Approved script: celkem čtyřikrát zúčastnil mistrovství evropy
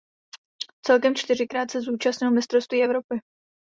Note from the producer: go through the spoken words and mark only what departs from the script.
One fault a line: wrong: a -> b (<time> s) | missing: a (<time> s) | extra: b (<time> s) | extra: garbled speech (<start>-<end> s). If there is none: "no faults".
extra: se (1.7 s)